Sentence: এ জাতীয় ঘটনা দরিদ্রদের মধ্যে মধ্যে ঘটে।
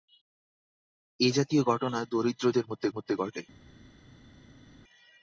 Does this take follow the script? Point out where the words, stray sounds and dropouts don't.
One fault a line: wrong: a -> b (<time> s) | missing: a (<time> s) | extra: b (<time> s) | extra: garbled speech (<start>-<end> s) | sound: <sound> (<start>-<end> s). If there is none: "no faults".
no faults